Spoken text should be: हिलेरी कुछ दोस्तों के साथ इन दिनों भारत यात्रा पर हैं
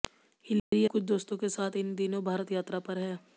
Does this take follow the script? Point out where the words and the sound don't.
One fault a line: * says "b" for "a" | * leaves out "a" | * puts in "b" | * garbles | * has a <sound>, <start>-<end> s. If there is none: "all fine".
* has a dropout, 0.6-0.7 s